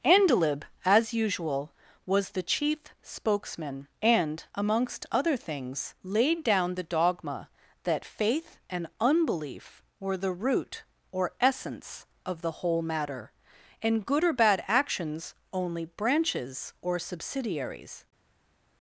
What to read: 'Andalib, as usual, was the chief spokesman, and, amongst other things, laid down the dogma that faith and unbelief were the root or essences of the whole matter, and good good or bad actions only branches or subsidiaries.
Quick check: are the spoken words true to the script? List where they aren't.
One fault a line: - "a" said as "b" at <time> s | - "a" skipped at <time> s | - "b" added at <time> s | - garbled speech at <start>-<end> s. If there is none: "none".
- "essences" said as "essence" at 11.4 s
- "good" skipped at 14.2 s